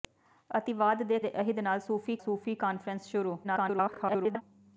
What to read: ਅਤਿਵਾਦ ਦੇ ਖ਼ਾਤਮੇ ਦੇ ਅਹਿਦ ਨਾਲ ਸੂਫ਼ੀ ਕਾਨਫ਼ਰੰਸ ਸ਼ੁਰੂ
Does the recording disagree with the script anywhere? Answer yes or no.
yes